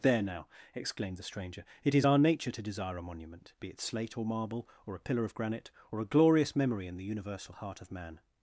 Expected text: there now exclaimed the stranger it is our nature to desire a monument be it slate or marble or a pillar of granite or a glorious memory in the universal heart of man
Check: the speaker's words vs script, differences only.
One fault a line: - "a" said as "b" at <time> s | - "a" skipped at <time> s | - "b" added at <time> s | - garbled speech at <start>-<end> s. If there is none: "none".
none